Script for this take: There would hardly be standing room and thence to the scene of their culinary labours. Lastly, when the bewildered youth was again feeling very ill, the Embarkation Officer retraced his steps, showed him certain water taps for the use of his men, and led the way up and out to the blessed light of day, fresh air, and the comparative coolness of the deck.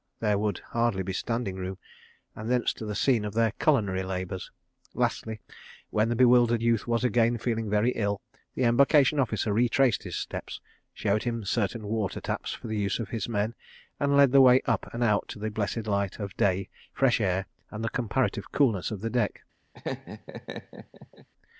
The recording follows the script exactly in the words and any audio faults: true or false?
false